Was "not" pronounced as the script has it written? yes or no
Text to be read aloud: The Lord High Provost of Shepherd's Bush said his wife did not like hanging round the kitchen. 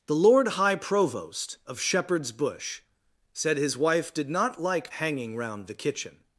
yes